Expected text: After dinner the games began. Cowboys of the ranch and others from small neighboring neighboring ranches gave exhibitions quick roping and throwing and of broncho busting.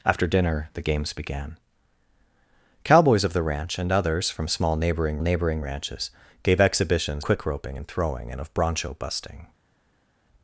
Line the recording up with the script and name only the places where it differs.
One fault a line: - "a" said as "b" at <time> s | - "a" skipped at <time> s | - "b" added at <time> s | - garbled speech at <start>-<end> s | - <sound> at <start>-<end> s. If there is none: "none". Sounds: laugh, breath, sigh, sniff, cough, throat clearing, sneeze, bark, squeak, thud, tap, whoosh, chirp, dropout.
none